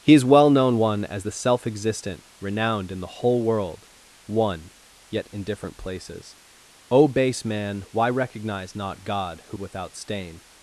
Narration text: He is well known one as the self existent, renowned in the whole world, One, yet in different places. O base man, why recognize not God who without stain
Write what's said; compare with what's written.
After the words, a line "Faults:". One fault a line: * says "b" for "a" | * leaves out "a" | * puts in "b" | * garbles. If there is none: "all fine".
He is well known one as the self existent, renowned in the whole world, One, yet in different places. O base man, why recognize not God who without stain
Faults:
all fine